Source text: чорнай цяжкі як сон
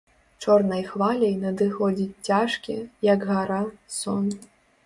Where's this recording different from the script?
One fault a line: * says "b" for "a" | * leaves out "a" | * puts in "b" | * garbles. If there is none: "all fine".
* puts in "хваляй надыходзіць"
* puts in "гара"